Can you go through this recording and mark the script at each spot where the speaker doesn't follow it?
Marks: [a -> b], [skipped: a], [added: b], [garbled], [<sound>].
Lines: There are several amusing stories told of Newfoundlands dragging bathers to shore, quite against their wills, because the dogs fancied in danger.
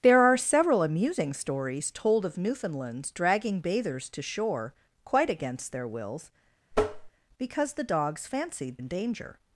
There are several amusing stories told of Newfoundlands dragging bathers to shore, quite against their wills, [tap] because the dogs fancied in danger.